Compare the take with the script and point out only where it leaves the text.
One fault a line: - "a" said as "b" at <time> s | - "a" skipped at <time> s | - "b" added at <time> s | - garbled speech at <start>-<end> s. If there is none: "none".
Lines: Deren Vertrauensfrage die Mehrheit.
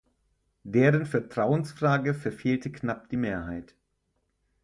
- "verfehlte knapp" added at 2.1 s